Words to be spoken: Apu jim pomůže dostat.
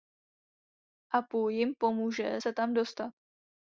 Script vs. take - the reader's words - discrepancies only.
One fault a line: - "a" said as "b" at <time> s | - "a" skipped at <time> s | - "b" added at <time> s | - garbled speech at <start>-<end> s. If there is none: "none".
- "se tam" added at 2.3 s